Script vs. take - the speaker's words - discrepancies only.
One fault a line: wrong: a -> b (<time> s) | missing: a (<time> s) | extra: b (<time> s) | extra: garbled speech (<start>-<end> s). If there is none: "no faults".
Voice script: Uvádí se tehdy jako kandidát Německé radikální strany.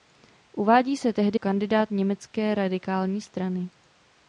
missing: jako (1.4 s)